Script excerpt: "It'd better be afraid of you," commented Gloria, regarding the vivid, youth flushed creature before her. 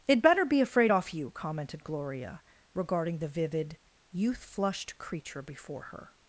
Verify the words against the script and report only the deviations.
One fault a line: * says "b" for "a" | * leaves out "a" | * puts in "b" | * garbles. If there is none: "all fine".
* says "off" for "of"